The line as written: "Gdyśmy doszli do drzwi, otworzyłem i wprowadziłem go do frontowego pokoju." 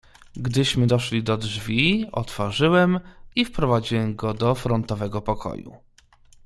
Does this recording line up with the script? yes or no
yes